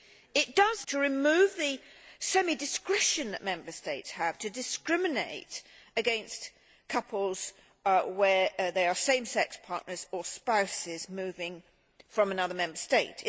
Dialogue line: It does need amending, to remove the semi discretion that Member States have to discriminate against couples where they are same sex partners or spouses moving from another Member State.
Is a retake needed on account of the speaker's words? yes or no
yes